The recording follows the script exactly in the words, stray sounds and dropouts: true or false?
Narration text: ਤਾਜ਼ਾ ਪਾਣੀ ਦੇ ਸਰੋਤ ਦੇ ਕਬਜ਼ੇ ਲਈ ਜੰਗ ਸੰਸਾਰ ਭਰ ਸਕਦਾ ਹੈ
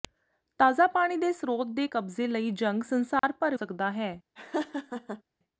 false